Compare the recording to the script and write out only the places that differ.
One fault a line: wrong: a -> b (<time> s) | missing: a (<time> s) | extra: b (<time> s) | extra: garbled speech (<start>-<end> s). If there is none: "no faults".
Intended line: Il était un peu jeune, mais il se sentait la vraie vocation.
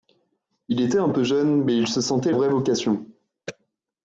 missing: la (2.3 s)